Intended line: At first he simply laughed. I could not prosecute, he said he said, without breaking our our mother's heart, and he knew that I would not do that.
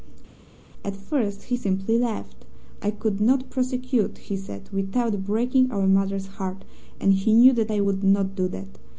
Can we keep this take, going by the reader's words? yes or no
no